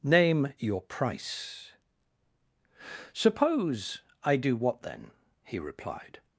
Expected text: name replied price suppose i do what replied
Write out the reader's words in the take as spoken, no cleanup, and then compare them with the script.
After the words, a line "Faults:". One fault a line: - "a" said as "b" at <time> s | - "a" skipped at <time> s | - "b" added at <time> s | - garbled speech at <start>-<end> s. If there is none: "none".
name your price suppose i do what then he replied
Faults:
- "replied" said as "your" at 0.6 s
- "then he" added at 4.8 s